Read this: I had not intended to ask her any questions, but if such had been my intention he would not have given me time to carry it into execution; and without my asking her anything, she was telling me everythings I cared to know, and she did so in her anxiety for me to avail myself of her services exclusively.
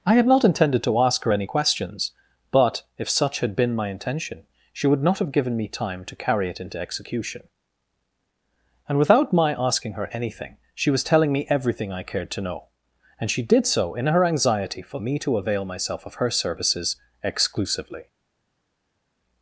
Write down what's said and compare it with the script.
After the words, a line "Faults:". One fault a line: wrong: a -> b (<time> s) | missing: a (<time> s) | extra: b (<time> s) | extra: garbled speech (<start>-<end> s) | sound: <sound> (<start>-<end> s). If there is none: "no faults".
I had not intended to ask her any questions, but if such had been my intention she would not have given me time to carry it into execution; and without my asking her anything, she was telling me everything I cared to know, and she did so in her anxiety for me to avail myself of her services exclusively.
Faults:
wrong: he -> she (4.7 s)
wrong: everythings -> everything (11.5 s)